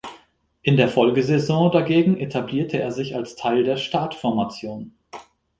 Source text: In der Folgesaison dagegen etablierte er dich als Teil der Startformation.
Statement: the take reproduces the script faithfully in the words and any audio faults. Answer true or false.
false